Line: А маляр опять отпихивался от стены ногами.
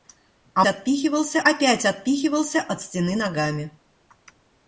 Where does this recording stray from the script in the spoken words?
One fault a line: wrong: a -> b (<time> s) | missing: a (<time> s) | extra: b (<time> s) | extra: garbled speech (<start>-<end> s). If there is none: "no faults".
wrong: маляр -> отпихивался (0.7 s)